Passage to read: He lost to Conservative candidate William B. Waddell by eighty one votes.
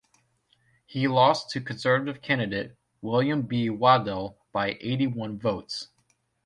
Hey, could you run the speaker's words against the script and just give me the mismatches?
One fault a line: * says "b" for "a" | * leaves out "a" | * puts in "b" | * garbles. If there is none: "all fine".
all fine